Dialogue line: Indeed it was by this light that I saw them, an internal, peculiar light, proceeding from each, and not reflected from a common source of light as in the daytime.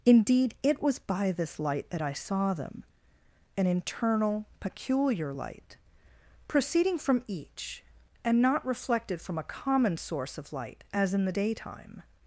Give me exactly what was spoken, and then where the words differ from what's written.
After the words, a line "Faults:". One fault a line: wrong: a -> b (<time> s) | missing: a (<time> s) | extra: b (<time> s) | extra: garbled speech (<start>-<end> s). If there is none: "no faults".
Indeed it was by this light that I saw them, an internal, peculiar light, proceeding from each, and not reflected from a common source of light as in the daytime.
Faults:
no faults